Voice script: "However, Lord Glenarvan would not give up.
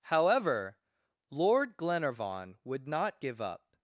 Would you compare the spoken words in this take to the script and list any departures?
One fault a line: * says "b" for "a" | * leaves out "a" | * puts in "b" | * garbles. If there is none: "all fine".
all fine